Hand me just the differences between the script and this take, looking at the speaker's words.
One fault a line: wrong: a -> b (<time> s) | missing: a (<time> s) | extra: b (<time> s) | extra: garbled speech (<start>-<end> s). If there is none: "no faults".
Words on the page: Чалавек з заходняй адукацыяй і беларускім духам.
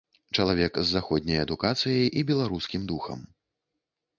no faults